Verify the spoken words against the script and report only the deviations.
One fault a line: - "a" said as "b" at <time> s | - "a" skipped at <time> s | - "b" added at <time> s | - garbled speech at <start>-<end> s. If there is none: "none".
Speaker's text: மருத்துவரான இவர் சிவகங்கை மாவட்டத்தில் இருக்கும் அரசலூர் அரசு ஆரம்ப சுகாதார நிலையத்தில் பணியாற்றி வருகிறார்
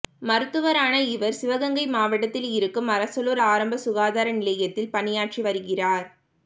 - "அரசு" skipped at 3.4 s